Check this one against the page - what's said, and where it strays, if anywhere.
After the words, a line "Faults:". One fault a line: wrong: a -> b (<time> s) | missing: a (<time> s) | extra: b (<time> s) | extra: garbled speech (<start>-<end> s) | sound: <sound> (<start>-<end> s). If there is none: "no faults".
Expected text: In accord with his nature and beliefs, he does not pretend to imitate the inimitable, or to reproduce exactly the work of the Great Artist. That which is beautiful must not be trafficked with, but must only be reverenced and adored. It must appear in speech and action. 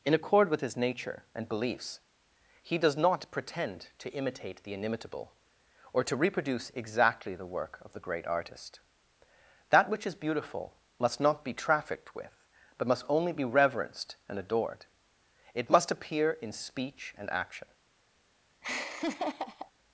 In accord with his nature and beliefs, he does not pretend to imitate the inimitable, or to reproduce exactly the work of the Great Artist. That which is beautiful must not be trafficked with, but must only be reverenced and adored. It must appear in speech and action.
Faults:
sound: laugh (18.6-19.7 s)